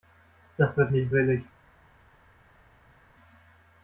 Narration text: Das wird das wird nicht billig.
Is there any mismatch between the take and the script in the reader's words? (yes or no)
yes